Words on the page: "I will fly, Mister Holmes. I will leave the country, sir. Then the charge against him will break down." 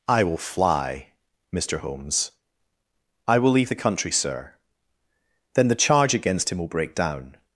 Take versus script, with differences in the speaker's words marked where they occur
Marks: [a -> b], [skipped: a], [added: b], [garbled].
"I will fly, Mister Holmes. I will leave the country, sir. Then the charge against him will break down."